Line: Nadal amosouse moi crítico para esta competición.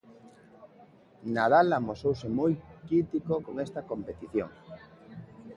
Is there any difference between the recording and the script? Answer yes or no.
yes